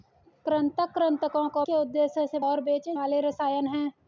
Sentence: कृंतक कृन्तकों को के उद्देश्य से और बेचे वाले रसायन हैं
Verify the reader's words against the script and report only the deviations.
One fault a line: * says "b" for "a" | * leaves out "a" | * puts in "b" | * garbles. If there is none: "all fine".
all fine